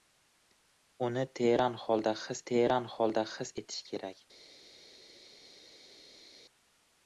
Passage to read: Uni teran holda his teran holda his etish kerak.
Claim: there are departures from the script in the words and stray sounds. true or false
false